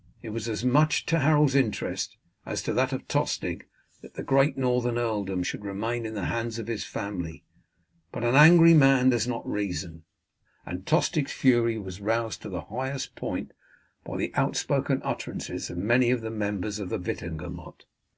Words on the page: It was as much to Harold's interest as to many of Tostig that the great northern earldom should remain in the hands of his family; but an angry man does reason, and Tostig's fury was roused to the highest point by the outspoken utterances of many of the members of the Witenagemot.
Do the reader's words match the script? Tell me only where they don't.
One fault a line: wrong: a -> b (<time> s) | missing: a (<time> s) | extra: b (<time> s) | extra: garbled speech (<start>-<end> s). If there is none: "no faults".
wrong: many -> that (2.7 s)
extra: not (9.3 s)